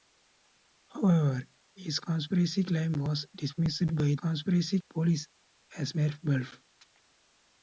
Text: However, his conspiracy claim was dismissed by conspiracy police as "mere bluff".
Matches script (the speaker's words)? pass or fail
pass